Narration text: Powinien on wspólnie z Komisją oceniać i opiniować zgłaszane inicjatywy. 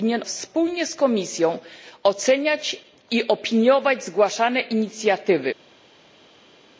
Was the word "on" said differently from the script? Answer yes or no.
yes